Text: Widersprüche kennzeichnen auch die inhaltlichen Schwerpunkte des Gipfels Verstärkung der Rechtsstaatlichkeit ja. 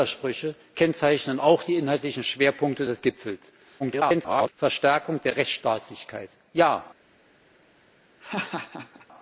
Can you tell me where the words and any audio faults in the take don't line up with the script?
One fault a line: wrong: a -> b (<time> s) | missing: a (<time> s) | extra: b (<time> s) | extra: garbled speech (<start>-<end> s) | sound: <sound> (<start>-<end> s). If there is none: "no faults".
extra: garbled speech (3.8-4.5 s)
sound: laugh (8.2-9.1 s)